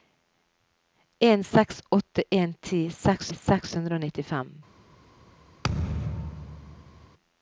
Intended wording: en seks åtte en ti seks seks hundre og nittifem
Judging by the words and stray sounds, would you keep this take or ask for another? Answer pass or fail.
fail